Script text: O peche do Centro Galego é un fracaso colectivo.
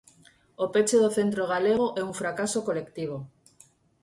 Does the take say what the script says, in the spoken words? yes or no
yes